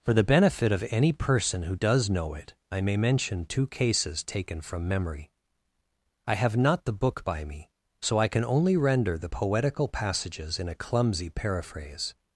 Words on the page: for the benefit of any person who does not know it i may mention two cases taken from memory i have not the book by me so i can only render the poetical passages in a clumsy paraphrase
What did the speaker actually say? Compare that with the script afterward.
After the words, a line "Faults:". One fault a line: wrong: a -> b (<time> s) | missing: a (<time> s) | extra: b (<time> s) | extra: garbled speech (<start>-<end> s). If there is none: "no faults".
for the benefit of any person who does know it i may mention two cases taken from memory i have not the book by me so i can only render the poetical passages in a clumsy paraphrase
Faults:
missing: not (2.1 s)